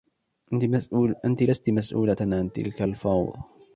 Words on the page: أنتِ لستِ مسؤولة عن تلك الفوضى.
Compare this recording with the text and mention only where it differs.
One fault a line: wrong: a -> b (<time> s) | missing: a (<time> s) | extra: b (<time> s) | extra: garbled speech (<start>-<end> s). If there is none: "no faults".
no faults